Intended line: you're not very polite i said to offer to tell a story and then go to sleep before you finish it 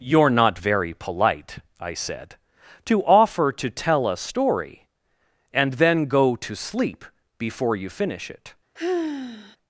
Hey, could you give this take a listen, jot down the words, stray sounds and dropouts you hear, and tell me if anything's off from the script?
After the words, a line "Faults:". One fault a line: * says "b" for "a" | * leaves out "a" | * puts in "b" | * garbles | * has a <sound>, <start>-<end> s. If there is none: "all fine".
you're not very polite i said to offer to tell a story and then go to sleep before you finish it
Faults:
* has a sigh, 8.8-9.6 s